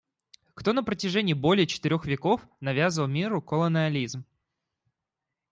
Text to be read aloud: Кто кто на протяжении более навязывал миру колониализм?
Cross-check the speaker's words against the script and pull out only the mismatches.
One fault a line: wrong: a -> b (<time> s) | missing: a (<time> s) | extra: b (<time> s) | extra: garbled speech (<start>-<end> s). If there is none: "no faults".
missing: кто (0.7 s)
extra: четырех веков (1.7 s)